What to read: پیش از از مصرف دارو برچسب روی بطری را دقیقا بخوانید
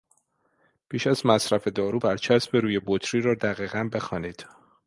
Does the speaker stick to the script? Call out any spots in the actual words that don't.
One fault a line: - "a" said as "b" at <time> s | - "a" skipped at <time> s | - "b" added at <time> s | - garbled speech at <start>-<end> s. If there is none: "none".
- "از" skipped at 1.2 s